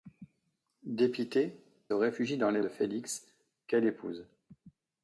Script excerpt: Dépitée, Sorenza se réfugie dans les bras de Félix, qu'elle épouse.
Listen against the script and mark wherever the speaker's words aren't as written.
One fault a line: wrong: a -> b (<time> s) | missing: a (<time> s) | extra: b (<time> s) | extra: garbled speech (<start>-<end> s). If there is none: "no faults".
missing: Sorenza se (1.6 s)
missing: bras (2.6 s)